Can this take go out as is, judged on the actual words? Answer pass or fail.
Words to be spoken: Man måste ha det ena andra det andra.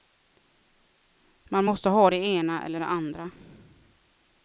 fail